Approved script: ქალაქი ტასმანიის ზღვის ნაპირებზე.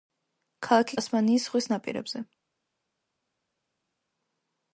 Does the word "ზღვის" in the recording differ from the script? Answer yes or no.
no